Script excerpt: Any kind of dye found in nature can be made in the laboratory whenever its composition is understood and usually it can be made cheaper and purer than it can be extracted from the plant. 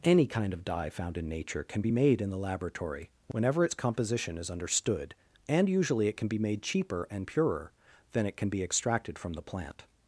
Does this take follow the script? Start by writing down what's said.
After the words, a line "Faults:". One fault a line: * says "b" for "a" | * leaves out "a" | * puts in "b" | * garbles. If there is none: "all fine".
Any kind of dye found in nature can be made in the laboratory whenever its composition is understood and usually it can be made cheaper and purer than it can be extracted from the plant.
Faults:
all fine